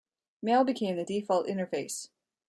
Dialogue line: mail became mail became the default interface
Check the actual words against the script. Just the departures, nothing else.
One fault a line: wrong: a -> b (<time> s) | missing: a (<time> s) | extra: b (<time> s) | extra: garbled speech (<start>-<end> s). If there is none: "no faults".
missing: mail became (1.0 s)